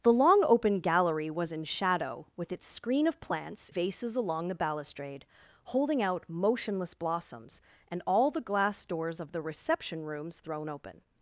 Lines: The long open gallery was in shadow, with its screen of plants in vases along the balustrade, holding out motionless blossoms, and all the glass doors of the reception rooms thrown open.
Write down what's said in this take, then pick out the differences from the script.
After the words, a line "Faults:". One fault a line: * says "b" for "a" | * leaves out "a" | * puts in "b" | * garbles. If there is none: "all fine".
The long open gallery was in shadow, with its screen of plants vases along the balustrade, holding out motionless blossoms, and all the glass doors of the reception rooms thrown open.
Faults:
* leaves out "in"